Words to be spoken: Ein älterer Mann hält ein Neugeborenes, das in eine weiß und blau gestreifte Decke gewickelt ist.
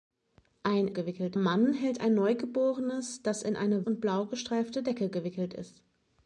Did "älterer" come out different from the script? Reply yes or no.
yes